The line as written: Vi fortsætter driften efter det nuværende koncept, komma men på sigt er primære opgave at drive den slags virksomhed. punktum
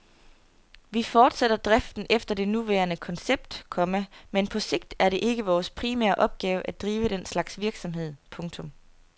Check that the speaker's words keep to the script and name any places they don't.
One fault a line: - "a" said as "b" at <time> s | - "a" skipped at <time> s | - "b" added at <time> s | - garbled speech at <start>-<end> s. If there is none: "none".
- "det ikke vores" added at 5.1 s